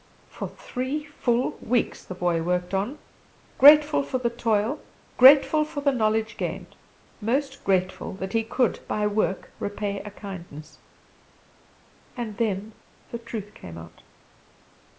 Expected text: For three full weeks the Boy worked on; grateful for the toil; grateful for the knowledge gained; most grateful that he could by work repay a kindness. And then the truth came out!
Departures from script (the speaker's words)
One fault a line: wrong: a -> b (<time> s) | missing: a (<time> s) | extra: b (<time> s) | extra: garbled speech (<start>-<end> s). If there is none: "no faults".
no faults